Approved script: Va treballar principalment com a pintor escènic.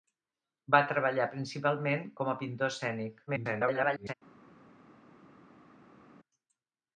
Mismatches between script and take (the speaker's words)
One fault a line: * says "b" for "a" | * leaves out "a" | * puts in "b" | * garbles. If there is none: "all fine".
* garbles